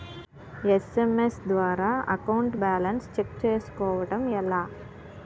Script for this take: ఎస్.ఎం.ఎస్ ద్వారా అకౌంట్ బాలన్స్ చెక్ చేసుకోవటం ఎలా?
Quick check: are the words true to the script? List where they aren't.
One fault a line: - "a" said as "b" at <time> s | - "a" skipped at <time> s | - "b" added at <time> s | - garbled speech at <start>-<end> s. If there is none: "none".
none